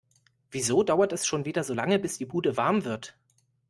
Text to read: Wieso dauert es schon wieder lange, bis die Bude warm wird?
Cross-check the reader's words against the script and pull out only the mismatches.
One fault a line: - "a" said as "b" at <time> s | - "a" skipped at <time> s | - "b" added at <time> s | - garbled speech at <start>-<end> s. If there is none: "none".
- "so" added at 1.6 s